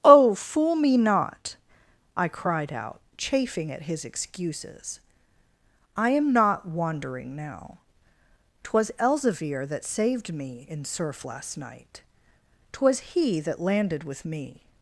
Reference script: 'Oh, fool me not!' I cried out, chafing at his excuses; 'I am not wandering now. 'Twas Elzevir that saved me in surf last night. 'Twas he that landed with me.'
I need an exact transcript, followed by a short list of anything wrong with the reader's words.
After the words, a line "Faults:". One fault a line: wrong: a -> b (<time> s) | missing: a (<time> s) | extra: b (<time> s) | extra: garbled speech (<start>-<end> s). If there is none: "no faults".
'Oh, fool me not!' I cried out, chafing at his excuses; 'I am not wandering now. 'Twas Elzevir that saved me in surf last night. 'Twas he that landed with me.'
Faults:
no faults